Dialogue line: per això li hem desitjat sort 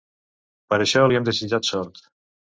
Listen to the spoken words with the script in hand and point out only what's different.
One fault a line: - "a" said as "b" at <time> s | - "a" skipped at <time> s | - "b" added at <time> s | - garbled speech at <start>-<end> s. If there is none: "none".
none